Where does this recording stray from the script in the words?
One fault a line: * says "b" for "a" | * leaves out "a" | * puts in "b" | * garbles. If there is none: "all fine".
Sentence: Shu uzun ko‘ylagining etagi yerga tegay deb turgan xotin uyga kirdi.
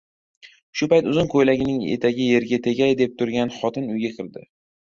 * puts in "payt"